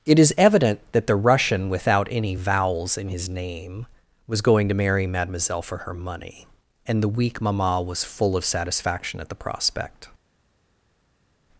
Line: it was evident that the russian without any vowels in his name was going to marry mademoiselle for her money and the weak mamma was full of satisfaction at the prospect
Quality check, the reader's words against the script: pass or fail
fail